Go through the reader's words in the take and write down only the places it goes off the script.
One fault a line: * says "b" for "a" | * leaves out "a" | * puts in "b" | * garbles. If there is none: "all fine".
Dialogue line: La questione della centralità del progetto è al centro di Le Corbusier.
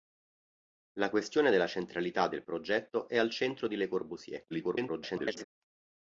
* garbles